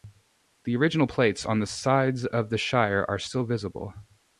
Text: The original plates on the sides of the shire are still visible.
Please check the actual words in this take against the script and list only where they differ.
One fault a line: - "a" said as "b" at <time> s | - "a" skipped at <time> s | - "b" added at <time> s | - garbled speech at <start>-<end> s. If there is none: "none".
none